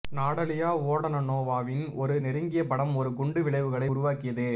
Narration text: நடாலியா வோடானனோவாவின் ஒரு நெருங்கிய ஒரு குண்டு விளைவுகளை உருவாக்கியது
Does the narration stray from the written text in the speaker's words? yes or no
yes